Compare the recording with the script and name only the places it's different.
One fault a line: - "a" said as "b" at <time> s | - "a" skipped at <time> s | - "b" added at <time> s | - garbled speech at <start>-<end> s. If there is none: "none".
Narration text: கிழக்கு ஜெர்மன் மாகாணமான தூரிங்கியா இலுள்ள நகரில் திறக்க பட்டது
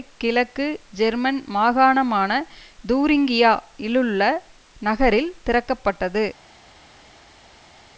none